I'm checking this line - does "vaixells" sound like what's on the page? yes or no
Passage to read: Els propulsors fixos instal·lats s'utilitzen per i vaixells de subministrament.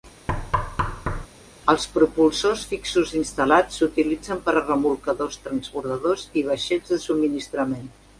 yes